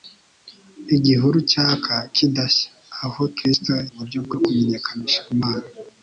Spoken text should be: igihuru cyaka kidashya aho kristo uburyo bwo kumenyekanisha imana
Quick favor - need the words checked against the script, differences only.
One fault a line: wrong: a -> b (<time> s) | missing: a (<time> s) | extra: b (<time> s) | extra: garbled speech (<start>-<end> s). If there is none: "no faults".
no faults